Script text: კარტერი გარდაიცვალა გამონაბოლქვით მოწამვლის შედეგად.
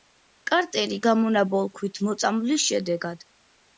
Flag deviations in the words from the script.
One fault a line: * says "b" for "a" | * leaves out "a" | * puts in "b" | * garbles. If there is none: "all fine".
* leaves out "გარდაიცვალა"